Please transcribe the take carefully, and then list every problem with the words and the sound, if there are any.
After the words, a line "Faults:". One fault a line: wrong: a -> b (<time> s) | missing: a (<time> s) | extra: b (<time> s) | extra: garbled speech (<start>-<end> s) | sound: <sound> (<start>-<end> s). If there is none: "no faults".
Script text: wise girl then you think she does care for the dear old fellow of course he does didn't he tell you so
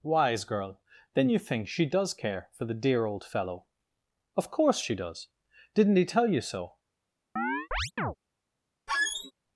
wise girl then you think she does care for the dear old fellow of course she does didn't he tell you so
Faults:
wrong: he -> she (4.8 s)
sound: chirp (7.4-8.2 s)
sound: squeak (8.9-9.3 s)